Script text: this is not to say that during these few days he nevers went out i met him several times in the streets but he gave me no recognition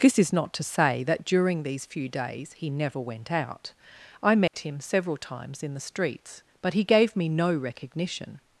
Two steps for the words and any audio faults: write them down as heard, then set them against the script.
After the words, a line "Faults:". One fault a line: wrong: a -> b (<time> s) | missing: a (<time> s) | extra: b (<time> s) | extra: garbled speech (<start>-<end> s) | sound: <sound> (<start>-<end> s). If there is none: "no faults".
this is not to say that during these few days he never went out i met him several times in the streets but he gave me no recognition
Faults:
wrong: nevers -> never (2.7 s)
sound: dropout (4.5-4.5 s)